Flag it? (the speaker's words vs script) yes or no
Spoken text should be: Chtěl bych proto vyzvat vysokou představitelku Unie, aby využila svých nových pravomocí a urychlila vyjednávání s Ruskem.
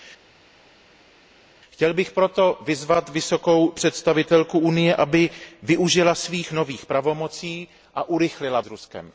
yes